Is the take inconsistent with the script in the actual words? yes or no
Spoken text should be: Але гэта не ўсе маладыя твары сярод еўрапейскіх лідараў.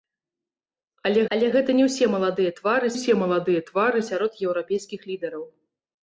yes